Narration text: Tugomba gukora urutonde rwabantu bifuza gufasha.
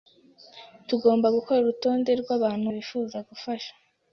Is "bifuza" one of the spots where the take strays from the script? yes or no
no